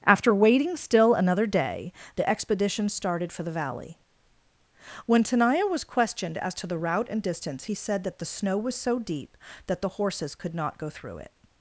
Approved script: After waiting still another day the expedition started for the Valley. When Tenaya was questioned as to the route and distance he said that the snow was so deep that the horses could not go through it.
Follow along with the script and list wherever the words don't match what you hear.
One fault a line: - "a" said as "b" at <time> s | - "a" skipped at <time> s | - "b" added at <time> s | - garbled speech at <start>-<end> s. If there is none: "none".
none